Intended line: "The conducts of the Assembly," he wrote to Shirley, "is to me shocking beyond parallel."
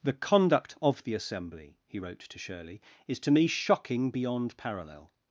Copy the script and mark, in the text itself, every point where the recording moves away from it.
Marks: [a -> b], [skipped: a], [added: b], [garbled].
"The [conducts -> conduct] of the Assembly," he wrote to Shirley, "is to me shocking beyond parallel."